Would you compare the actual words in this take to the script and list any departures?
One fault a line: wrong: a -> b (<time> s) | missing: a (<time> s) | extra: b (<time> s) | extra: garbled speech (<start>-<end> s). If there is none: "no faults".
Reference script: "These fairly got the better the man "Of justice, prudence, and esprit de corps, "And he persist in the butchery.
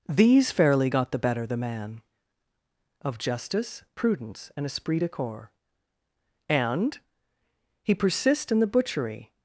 no faults